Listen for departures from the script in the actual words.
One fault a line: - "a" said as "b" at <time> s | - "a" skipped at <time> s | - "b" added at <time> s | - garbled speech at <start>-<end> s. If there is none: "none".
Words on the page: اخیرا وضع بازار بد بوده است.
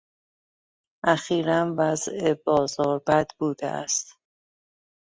none